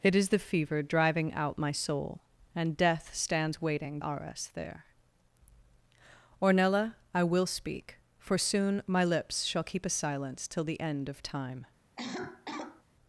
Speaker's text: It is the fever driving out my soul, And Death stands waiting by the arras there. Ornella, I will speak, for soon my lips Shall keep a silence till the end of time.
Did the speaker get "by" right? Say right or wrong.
wrong